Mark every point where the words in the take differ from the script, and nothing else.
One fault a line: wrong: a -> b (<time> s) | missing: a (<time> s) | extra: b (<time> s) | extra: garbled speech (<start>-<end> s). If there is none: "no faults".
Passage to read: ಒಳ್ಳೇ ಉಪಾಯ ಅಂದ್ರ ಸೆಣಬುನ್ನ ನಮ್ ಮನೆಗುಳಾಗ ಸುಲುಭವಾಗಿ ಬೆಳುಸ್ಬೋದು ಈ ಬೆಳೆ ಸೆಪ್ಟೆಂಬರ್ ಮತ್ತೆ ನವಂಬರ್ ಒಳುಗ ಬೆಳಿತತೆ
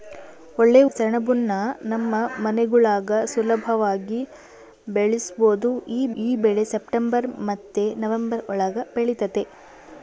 missing: ಉಪಾಯ ಅಂದ್ರ (0.8 s)
extra: ಈ (6.2 s)